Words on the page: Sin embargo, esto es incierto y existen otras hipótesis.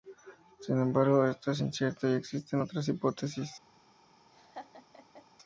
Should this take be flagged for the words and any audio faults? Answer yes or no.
yes